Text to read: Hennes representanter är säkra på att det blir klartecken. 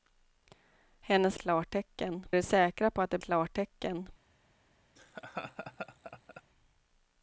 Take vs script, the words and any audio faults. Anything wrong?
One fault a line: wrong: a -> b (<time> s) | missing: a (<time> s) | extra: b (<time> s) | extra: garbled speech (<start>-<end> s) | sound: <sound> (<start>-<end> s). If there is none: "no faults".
wrong: representanter -> klartecken (1.3 s)
missing: blir (3.2 s)
sound: laugh (5.0-6.4 s)